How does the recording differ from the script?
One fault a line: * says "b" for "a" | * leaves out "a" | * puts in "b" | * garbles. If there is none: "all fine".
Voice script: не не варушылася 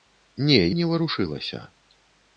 all fine